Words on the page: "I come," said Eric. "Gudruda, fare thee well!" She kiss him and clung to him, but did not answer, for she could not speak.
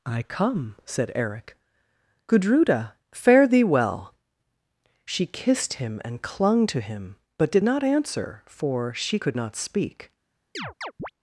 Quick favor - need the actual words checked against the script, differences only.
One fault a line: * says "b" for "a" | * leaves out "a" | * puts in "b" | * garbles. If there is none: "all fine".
* says "kissed" for "kiss"